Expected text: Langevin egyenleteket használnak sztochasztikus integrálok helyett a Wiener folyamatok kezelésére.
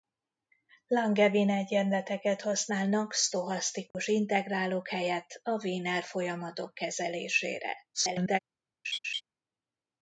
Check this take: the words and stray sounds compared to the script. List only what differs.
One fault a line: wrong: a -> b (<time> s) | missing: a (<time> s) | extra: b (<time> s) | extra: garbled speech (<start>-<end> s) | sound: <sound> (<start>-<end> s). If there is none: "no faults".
sound: dropout (3.9-3.9 s)
extra: garbled speech (7.9-8.4 s)
sound: laugh (8.8-9.2 s)